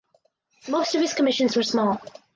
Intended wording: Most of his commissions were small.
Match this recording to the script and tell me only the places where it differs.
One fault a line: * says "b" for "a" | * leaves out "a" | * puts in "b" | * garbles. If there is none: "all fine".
all fine